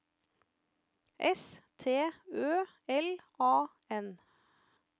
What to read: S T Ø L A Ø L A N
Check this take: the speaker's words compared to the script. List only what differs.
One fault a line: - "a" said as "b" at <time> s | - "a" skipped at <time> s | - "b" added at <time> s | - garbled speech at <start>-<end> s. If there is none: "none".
- "Ø L A" skipped at 3.7 s